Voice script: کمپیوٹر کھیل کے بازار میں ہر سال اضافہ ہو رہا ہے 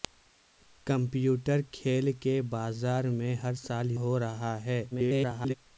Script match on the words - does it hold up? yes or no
no